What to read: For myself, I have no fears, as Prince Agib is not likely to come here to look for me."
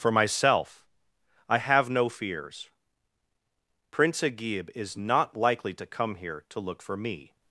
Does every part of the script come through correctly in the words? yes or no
no